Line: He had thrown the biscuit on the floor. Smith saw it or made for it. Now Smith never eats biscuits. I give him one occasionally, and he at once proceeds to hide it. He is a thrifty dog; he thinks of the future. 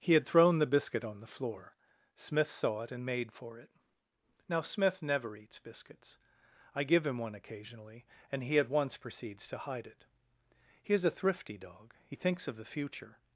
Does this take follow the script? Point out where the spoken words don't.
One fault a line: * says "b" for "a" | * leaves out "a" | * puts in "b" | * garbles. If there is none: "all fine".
* says "and" for "or"